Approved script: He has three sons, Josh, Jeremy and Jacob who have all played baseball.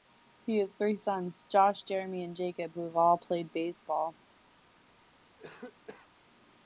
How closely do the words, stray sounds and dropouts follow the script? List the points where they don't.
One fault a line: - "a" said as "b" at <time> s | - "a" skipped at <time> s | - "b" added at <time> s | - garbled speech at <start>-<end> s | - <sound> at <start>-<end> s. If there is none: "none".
- cough at 5.4-6.1 s